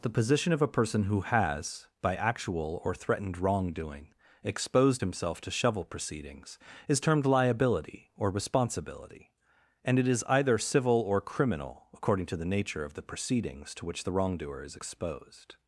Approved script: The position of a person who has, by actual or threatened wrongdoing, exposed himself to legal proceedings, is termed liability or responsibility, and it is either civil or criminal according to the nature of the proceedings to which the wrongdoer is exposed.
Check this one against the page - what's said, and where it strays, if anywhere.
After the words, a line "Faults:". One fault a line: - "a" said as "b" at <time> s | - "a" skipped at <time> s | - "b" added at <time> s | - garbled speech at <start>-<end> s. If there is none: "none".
The position of a person who has, by actual or threatened wrongdoing, exposed himself to shovel proceedings, is termed liability or responsibility, and it is either civil or criminal according to the nature of the proceedings to which the wrongdoer is exposed.
Faults:
- "legal" said as "shovel" at 5.5 s